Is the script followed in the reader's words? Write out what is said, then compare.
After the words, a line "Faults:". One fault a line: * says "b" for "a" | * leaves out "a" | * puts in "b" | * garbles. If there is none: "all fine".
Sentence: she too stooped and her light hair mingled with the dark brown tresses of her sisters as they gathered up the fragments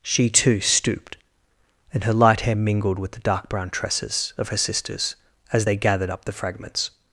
she too stooped and her light hair mingled with the dark brown tresses of her sisters as they gathered up the fragments
Faults:
all fine